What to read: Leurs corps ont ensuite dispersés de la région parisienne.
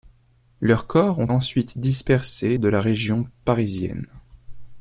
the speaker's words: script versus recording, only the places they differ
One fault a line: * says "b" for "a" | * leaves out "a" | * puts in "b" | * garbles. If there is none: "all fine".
all fine